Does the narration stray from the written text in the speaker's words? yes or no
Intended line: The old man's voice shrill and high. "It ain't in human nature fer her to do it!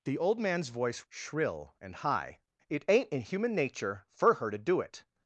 no